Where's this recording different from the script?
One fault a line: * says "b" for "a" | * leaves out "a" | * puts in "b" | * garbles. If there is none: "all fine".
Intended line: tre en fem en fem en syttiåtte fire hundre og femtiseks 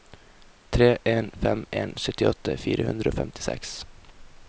* leaves out "fem en"